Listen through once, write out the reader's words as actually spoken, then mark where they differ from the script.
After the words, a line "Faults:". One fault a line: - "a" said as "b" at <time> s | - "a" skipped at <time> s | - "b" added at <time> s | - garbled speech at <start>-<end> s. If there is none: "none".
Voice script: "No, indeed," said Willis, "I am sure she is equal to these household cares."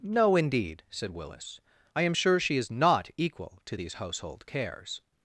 "No, indeed," said Willis, "I am sure she is not equal to these household cares."
Faults:
- "not" added at 2.7 s